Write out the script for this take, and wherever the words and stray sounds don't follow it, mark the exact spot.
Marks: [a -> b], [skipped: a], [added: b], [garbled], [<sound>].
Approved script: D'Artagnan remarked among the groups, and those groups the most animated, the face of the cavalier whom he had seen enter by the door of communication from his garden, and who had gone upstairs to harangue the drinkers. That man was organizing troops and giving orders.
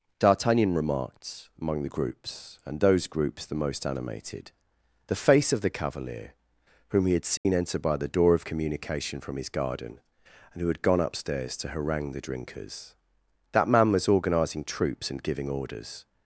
D'Artagnan remarked among the groups, and those groups the most animated, the face of the cavalier whom he had seen [dropout] enter by the door of communication from his garden, and who had gone upstairs to harangue the drinkers. That man was organizing troops and giving orders.